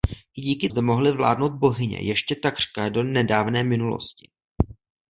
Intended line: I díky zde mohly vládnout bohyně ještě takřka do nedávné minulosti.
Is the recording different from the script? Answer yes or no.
no